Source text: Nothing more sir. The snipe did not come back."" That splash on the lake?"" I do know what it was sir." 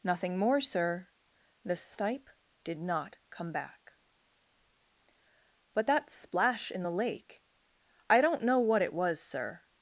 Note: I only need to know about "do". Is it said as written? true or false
false